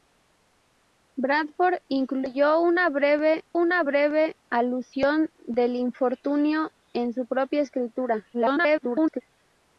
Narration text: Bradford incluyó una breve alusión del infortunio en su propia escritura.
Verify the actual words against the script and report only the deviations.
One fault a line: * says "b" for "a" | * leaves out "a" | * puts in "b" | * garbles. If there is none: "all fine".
* puts in "una breve"
* garbles